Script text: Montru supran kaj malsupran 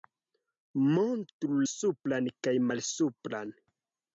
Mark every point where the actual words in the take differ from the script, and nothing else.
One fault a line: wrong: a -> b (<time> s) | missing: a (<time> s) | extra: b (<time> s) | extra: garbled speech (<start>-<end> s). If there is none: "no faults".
no faults